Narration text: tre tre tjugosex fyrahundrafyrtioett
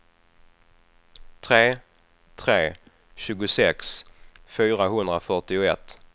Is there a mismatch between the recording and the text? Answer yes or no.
no